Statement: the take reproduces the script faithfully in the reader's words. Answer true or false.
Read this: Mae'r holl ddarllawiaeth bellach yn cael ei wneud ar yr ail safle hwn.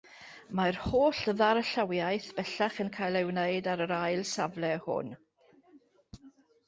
true